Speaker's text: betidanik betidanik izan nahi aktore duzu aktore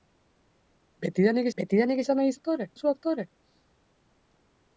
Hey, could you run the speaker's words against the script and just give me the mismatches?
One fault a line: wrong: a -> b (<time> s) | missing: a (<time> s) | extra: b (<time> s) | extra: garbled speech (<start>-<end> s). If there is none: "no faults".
no faults